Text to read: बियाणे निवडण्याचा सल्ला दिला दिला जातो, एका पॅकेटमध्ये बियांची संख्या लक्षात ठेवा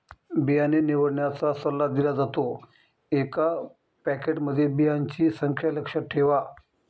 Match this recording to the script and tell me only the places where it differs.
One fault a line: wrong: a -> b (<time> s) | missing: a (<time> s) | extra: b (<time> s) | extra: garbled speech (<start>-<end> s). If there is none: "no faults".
missing: दिला (2.1 s)